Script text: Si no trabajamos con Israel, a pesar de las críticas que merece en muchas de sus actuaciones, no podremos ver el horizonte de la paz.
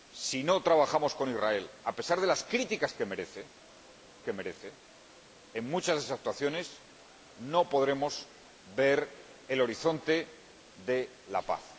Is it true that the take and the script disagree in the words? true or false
true